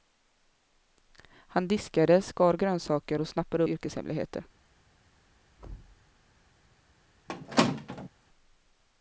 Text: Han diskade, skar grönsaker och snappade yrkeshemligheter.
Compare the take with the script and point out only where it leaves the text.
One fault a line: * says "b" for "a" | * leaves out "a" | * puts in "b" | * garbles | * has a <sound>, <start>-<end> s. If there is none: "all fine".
* has a thud, 5.6-6.0 s
* has a squeak, 7.3-8.1 s